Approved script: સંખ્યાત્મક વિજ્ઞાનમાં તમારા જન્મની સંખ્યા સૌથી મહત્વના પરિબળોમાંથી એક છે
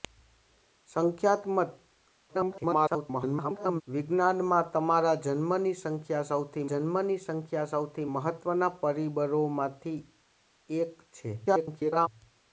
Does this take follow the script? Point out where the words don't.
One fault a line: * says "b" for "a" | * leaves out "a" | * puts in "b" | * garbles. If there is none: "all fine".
* garbles
* puts in "જન્મની સંખ્યા સૌથી"
* garbles